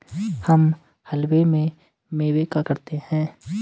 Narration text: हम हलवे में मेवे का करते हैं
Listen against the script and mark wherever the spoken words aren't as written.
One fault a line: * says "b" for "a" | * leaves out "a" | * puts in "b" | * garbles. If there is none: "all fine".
all fine